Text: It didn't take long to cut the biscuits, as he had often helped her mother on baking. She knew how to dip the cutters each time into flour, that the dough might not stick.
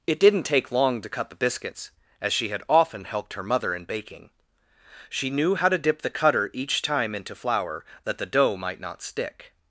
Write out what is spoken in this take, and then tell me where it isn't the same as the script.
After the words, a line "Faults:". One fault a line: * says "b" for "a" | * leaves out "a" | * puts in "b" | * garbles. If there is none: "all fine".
It didn't take long to cut the biscuits, as she had often helped her mother in baking. She knew how to dip the cutter each time into flour, that the dough might not stick.
Faults:
* says "she" for "he"
* says "in" for "on"
* says "cutter" for "cutters"